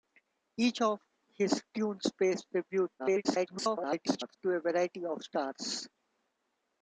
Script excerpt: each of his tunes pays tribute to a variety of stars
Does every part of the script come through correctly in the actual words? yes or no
no